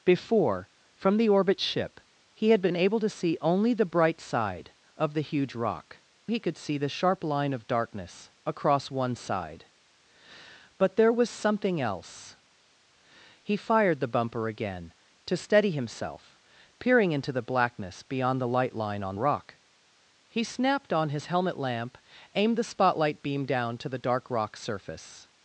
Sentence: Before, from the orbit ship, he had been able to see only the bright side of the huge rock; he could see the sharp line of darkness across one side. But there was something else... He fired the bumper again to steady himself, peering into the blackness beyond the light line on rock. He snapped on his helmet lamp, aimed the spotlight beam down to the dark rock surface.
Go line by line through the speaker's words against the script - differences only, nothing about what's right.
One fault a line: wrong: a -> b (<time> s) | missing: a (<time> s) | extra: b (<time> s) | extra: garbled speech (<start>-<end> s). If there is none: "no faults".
no faults